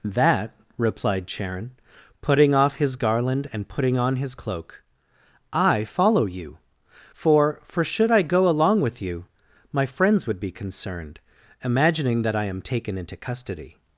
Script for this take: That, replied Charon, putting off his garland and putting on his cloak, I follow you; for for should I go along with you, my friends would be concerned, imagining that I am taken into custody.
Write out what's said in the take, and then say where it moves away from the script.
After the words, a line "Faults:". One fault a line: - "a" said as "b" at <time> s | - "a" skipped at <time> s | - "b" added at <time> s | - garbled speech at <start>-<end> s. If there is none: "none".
That, replied Charon, putting off his garland and putting on his cloak, I follow you; for for should I go along with you, my friends would be concerned, imagining that I am taken into custody.
Faults:
none